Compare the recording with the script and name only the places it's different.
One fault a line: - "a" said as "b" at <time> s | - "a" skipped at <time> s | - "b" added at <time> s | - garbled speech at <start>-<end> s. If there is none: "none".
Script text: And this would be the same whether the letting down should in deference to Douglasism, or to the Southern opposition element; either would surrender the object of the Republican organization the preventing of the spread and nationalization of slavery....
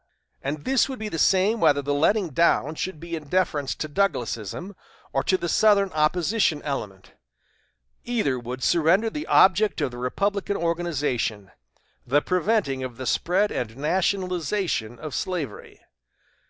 - "be" added at 3.0 s